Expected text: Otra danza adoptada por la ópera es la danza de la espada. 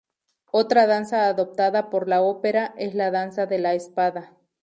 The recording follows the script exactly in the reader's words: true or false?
true